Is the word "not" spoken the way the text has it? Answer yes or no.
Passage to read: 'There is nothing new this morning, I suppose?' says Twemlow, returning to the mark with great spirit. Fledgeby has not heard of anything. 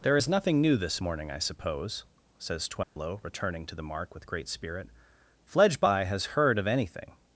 no